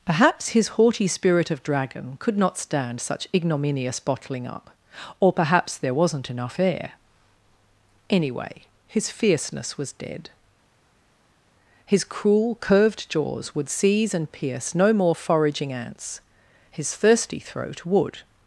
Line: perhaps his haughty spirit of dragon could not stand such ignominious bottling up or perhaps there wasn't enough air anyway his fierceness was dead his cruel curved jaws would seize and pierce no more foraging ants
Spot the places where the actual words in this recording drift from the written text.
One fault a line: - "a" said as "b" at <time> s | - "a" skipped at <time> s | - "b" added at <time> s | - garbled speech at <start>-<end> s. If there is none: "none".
- "his thirsty throat would" added at 16.7 s